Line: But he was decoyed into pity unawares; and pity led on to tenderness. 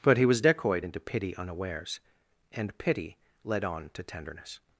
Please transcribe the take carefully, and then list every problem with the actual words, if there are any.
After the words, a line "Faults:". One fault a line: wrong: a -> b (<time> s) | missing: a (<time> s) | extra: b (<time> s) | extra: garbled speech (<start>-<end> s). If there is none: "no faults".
But he was decoyed into pity unawares; and pity led on to tenderness.
Faults:
no faults